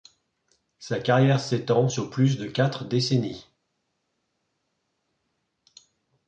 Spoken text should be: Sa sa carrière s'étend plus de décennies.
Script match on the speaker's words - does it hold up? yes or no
no